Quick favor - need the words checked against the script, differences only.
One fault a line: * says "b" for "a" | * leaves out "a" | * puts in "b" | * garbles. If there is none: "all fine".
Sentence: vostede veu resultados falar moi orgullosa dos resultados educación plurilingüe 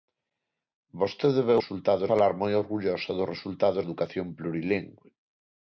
all fine